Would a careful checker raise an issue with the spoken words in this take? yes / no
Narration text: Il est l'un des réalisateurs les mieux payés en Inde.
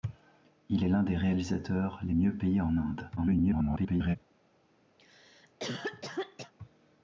yes